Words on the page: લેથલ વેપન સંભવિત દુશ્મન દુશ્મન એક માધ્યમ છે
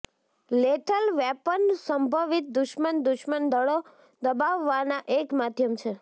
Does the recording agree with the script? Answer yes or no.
no